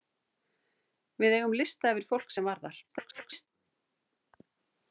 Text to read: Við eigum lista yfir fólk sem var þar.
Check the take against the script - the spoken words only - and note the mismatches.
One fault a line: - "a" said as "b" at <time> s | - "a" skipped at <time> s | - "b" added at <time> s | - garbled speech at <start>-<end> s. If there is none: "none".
- garbled speech at 2.9-3.5 s